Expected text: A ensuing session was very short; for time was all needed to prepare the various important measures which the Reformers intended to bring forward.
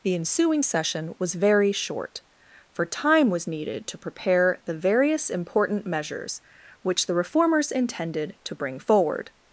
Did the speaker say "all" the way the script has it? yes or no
no